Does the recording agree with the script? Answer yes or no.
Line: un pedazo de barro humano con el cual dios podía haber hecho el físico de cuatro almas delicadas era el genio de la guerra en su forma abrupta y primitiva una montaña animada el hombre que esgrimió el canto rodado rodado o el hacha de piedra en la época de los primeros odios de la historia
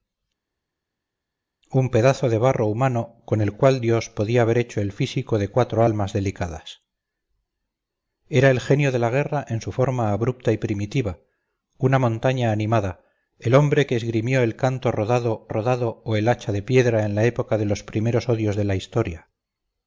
yes